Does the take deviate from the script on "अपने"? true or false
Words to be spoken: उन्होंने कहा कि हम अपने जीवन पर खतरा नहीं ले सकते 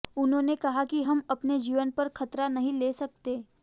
false